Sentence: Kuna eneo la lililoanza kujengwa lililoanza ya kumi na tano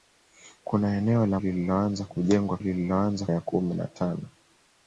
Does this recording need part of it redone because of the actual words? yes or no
no